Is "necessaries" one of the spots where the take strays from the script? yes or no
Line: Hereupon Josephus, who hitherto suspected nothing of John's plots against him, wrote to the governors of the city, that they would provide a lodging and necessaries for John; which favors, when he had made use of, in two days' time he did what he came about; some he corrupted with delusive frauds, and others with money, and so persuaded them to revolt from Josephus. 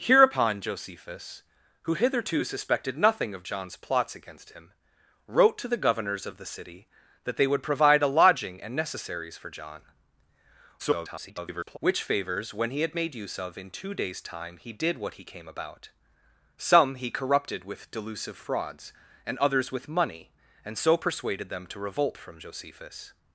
no